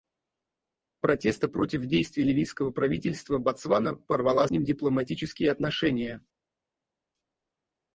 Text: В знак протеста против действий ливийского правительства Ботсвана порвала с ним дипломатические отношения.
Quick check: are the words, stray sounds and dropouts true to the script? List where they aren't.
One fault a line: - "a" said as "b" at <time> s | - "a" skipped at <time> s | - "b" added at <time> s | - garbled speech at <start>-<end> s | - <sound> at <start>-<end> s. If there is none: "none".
- "знак" skipped at 1.1 s
- "с" skipped at 4.5 s